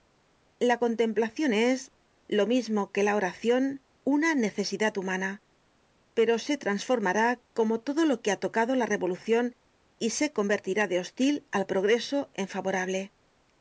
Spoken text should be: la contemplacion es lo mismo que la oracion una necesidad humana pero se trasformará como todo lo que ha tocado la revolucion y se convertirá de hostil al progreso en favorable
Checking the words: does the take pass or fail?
pass